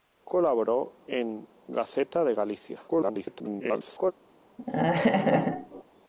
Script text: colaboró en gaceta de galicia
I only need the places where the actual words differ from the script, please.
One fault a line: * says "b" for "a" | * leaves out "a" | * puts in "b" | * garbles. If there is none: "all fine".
* garbles